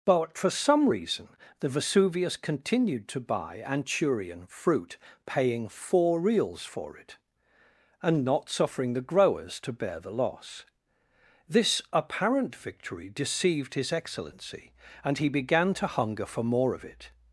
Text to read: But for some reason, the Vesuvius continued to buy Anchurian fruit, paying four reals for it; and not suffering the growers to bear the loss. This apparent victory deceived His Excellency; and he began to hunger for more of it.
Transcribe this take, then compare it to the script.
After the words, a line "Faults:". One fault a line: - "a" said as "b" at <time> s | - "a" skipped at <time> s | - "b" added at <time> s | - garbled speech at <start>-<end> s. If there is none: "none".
But for some reason, the Vesuvius continued to buy Anchurian fruit, paying four reals for it; and not suffering the growers to bear the loss. This apparent victory deceived His Excellency; and he began to hunger for more of it.
Faults:
none